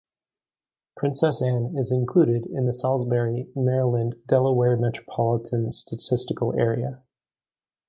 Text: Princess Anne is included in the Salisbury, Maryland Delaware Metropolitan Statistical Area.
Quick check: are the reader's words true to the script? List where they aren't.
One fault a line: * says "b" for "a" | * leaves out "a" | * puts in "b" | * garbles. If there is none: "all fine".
all fine